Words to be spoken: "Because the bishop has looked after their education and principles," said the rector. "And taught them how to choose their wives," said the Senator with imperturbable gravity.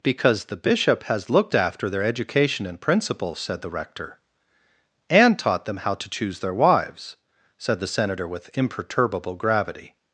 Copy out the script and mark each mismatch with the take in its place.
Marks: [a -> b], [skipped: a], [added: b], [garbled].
"Because the bishop has looked after their education and principles," said the rector. "And taught them how to choose their wives," said the Senator with imperturbable gravity.